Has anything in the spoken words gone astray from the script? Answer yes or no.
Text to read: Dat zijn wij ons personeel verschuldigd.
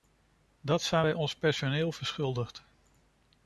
no